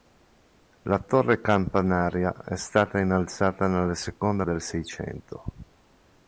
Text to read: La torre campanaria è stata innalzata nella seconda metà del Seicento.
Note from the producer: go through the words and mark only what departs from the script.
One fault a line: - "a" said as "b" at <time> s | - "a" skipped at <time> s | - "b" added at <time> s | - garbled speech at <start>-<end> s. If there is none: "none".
- "metà" skipped at 4.5 s